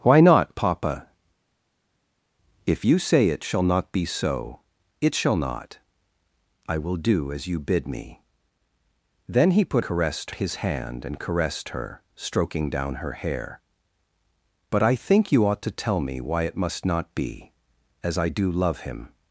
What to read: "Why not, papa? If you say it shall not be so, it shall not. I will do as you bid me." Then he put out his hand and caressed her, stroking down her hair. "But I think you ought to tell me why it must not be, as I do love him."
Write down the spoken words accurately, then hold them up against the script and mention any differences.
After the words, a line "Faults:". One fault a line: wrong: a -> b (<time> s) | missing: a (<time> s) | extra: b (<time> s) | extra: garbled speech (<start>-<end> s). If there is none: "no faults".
"Why not, papa? If you say it shall not be so, it shall not. I will do as you bid me." Then he put caressed his hand and caressed her, stroking down her hair. "But I think you ought to tell me why it must not be, as I do love him."
Faults:
wrong: out -> caressed (9.8 s)